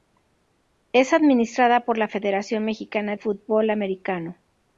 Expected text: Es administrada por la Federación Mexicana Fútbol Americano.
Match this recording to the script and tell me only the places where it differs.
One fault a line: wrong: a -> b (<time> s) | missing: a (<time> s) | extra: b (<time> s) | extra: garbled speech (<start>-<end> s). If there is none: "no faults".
no faults